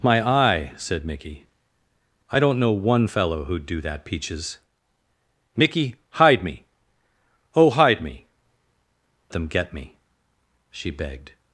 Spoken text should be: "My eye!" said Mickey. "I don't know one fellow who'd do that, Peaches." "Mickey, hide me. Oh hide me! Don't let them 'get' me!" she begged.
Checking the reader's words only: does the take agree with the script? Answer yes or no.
no